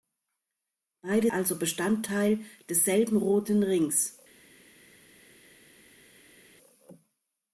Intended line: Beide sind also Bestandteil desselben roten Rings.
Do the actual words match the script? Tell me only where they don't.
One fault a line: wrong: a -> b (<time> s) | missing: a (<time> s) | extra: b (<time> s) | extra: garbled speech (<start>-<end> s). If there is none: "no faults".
missing: sind (1.3 s)